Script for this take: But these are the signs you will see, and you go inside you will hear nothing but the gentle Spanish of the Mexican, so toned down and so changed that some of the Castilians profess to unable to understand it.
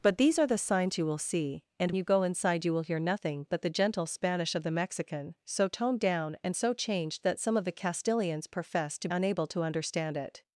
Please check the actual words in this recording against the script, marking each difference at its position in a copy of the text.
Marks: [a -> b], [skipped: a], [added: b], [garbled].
But these are the signs you will see, and you go inside you will hear nothing but the gentle Spanish of the Mexican, so toned down and so changed that some of the Castilians profess to unable to understand it.